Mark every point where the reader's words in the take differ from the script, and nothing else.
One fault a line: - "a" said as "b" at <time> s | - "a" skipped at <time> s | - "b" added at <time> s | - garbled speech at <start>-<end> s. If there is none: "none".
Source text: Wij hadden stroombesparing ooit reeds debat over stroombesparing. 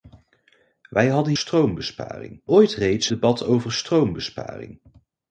none